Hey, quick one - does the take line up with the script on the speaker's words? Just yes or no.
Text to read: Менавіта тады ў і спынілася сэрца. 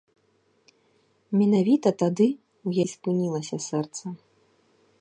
yes